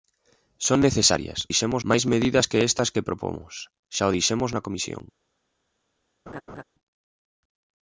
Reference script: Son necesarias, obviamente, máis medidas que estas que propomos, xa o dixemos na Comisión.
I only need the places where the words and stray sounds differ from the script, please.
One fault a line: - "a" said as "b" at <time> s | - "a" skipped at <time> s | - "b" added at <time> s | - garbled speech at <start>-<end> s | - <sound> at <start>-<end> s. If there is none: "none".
- "obviamente" said as "dixemos" at 1.5 s
- laugh at 6.3-6.6 s